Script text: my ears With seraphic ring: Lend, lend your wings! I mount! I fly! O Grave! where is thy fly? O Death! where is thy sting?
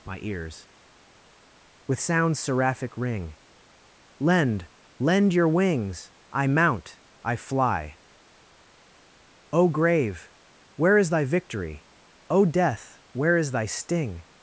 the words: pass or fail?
fail